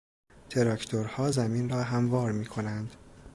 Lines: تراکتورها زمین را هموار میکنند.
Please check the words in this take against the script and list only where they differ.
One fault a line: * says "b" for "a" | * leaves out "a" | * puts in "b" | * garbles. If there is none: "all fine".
all fine